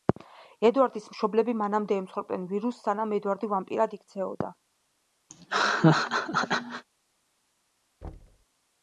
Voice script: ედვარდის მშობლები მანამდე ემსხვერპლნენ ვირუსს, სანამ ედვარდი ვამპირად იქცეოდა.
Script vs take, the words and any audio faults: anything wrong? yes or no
yes